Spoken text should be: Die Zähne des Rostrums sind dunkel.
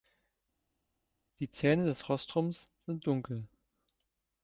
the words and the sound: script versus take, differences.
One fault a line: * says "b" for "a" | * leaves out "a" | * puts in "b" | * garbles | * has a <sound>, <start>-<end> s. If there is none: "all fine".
all fine